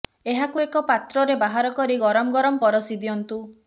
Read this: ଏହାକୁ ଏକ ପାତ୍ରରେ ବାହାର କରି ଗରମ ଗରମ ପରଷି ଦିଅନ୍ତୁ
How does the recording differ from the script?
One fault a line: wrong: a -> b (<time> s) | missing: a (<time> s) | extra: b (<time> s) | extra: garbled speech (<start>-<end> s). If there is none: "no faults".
no faults